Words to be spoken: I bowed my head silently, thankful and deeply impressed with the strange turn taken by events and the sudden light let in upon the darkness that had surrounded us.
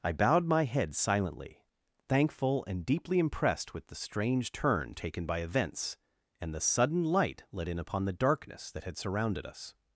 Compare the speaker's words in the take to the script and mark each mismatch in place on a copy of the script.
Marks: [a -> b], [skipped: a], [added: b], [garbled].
I bowed my head silently, thankful and deeply impressed with the strange turn taken by events and the sudden light let in upon the darkness that had surrounded us.